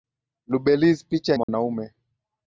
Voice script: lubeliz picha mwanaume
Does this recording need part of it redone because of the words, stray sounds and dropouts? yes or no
yes